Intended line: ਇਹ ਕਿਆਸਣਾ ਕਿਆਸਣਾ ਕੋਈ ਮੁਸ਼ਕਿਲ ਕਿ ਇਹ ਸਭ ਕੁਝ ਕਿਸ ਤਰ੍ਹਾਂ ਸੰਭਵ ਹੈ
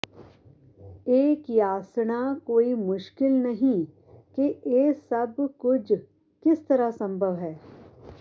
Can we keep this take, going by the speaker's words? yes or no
no